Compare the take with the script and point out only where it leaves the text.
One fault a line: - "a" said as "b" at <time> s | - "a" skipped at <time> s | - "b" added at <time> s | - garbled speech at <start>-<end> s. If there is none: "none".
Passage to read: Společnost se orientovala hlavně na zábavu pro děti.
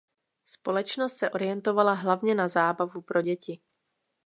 none